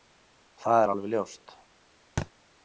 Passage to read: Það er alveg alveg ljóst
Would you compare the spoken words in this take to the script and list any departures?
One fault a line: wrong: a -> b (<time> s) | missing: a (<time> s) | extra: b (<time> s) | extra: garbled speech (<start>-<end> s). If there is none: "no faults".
missing: alveg (1.1 s)